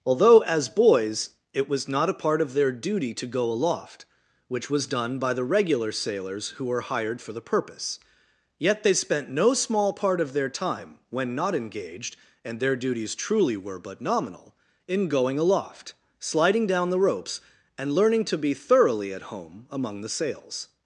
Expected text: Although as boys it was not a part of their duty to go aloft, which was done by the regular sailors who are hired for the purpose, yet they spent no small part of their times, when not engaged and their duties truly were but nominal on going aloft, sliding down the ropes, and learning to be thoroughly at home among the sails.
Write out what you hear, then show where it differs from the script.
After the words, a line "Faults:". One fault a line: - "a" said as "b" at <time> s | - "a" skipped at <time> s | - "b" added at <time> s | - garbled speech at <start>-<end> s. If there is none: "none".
Although as boys it was not a part of their duty to go aloft, which was done by the regular sailors who were hired for the purpose, yet they spent no small part of their time, when not engaged and their duties truly were but nominal in going aloft, sliding down the ropes, and learning to be thoroughly at home among the sails.
Faults:
- "are" said as "were" at 6.7 s
- "times" said as "time" at 10.5 s
- "on" said as "in" at 14.9 s